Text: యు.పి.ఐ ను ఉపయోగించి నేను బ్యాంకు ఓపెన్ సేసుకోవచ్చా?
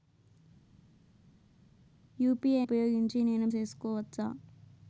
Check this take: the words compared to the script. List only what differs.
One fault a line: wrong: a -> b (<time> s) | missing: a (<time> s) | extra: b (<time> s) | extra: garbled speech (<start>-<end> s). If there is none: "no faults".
missing: ను (2.6 s)
missing: బ్యాంకు ఓపెన్ (3.5 s)